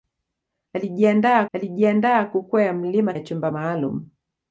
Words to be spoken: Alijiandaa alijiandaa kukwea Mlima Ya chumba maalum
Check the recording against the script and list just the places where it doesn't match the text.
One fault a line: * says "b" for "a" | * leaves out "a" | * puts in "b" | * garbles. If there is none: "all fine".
all fine